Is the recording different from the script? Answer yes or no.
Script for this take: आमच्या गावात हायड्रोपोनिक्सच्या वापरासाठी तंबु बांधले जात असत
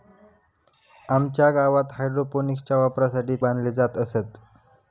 yes